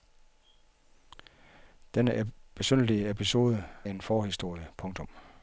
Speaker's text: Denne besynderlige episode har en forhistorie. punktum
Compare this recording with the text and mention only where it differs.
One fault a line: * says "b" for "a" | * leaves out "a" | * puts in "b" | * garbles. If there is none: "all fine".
* leaves out "har"